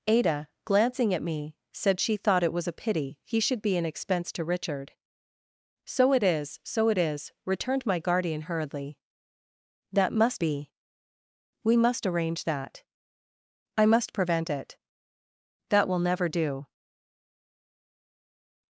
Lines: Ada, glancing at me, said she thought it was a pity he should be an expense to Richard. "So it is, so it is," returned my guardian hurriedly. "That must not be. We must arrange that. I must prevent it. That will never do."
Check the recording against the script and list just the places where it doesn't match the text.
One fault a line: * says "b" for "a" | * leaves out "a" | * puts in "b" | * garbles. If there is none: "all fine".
* leaves out "not"